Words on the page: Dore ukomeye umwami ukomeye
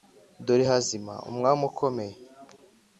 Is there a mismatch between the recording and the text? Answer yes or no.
yes